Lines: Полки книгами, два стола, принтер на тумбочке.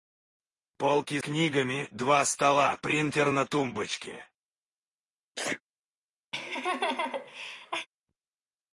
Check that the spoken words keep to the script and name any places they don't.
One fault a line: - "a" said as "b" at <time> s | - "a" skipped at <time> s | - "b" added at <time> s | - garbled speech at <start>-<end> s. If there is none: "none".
none